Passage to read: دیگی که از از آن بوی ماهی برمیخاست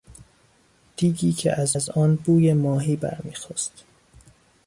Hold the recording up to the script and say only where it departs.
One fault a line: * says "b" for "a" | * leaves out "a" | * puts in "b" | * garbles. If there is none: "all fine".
all fine